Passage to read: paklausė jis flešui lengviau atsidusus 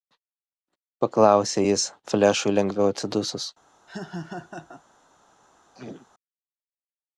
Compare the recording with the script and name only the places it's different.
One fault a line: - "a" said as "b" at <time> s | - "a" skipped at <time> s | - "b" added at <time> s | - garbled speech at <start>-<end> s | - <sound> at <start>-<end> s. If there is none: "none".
- laugh at 3.9-4.8 s
- throat clearing at 5.7-6.1 s